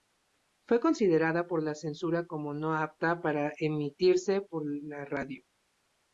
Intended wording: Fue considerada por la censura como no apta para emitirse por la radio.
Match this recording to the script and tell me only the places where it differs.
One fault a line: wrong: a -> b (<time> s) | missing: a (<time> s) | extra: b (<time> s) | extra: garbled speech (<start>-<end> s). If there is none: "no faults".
no faults